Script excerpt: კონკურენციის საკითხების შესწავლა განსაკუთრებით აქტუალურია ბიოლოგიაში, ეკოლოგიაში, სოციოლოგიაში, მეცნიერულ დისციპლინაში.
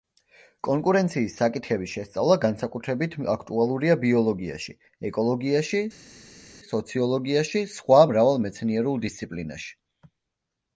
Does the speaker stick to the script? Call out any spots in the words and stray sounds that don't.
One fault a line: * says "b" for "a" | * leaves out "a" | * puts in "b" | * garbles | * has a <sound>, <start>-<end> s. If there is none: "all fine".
* puts in "სხვა მრავალ"